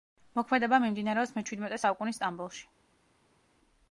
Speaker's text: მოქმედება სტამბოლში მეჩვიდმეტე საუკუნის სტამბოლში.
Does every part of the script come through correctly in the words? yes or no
no